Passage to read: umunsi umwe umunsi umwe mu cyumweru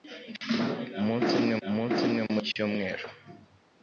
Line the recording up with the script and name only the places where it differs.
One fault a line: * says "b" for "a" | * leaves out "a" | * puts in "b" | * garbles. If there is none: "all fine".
all fine